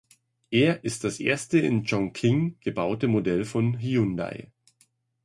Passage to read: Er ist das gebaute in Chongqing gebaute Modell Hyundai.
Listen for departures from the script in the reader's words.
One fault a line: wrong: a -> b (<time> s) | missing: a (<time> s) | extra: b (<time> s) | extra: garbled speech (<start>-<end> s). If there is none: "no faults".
wrong: gebaute -> erste (1.2 s)
extra: von (3.5 s)